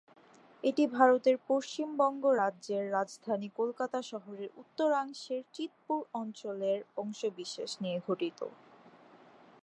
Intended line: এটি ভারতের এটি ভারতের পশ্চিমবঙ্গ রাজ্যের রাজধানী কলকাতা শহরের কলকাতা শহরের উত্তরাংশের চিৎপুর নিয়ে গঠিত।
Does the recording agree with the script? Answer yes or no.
no